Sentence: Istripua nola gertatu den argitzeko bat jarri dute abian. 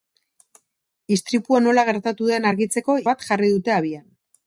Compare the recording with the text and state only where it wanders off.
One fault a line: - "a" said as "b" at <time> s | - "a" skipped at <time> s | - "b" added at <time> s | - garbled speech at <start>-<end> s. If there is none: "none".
none